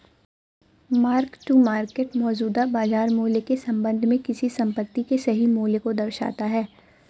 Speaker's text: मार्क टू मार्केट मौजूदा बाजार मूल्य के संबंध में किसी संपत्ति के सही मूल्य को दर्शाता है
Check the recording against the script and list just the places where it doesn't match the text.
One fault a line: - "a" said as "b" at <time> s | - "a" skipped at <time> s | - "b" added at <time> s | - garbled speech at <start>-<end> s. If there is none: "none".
none